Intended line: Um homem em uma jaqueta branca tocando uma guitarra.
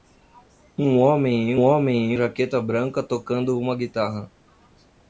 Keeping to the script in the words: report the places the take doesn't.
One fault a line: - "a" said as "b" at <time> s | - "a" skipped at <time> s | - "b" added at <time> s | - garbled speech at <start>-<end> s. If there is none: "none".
- "uma" said as "homem" at 1.6 s